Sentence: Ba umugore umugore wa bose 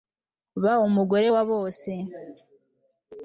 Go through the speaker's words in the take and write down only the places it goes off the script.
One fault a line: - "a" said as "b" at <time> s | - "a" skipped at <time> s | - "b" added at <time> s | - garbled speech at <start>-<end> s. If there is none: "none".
- "umugore" skipped at 1.3 s